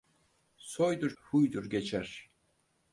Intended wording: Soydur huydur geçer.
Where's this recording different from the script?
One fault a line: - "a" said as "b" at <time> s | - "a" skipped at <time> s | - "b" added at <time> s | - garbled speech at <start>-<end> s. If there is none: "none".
none